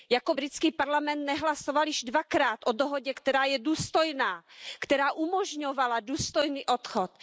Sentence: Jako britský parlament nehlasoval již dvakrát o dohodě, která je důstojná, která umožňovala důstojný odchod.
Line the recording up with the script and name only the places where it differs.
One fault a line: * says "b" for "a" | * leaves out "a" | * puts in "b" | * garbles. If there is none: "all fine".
all fine